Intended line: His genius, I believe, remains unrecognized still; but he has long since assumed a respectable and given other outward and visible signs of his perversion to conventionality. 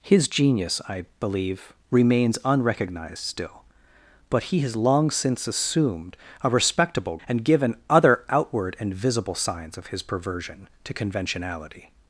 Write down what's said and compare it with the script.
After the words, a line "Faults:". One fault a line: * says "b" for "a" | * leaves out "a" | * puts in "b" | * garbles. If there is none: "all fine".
His genius, I believe, remains unrecognized still; but he has long since assumed a respectable and given other outward and visible signs of his perversion to conventionality.
Faults:
all fine